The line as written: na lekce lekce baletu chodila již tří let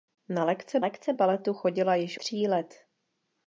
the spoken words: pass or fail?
pass